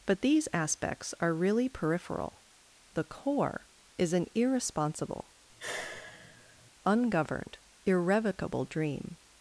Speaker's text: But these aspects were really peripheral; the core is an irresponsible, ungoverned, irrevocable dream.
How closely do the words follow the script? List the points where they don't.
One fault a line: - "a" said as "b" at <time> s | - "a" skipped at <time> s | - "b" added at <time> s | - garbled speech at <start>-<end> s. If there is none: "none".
- "were" said as "are" at 1.2 s